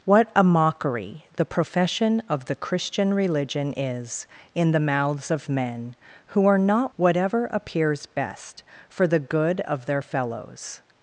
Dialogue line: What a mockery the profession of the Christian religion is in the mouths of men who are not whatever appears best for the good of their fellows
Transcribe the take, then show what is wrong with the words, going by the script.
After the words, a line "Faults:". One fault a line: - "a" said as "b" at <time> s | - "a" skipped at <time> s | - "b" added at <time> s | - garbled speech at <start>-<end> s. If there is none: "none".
What a mockery the profession of the Christian religion is in the mouths of men who are not whatever appears best for the good of their fellows
Faults:
none